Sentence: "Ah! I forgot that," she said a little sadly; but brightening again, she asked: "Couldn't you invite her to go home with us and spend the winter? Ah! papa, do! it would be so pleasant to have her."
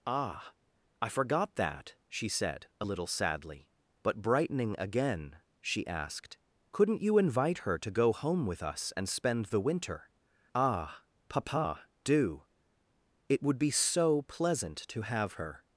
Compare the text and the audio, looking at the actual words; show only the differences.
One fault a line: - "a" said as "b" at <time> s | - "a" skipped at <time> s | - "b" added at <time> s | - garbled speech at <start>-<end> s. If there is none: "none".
none